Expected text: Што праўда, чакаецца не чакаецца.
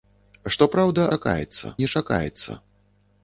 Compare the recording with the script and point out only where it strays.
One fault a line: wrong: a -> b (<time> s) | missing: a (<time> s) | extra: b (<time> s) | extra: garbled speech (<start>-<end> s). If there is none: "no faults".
no faults